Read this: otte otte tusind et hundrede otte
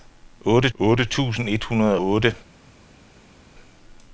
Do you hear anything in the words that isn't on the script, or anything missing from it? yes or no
no